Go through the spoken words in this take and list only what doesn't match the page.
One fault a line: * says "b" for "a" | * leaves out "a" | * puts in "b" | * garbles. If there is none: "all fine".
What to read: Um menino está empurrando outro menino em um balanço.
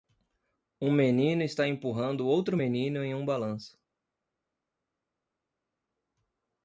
all fine